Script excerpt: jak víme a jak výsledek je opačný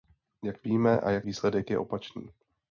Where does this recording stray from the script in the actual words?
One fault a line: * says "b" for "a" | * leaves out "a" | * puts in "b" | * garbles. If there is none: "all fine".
all fine